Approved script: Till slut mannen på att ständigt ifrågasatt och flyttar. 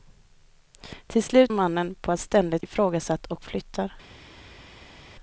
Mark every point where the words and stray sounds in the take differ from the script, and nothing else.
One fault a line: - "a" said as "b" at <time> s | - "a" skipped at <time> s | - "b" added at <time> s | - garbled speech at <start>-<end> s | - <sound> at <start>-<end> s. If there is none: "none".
none